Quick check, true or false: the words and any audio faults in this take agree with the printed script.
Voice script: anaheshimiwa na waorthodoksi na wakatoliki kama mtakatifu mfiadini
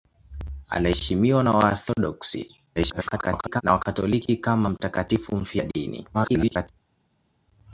false